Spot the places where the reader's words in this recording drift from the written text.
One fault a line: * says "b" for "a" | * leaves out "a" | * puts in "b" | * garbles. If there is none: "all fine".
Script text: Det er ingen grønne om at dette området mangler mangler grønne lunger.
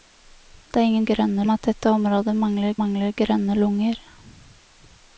all fine